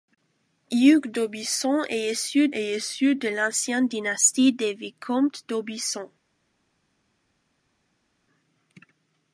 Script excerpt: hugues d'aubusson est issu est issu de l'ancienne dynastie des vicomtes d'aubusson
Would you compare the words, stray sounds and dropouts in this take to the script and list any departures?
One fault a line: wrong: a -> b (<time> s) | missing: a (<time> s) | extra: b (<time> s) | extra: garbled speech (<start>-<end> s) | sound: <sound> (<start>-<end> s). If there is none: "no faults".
no faults